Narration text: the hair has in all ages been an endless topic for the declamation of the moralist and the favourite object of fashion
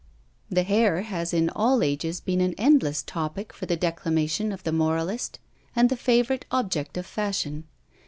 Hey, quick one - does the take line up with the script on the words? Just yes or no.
yes